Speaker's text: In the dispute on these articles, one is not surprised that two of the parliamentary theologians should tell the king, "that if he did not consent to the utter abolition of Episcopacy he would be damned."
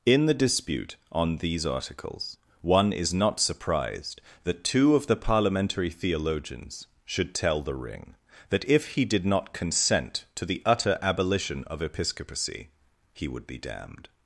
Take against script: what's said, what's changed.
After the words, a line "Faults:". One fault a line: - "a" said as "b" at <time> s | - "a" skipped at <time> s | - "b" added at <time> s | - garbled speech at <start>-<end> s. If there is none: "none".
In the dispute on these articles, one is not surprised that two of the parliamentary theologians should tell the ring, "that if he did not consent to the utter abolition of Episcopacy he would be damned."
Faults:
- "king" said as "ring" at 7.8 s